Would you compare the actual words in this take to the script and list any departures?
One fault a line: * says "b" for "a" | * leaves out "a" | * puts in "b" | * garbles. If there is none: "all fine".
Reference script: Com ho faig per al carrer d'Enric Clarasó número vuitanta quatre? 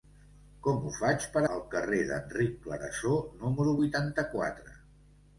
all fine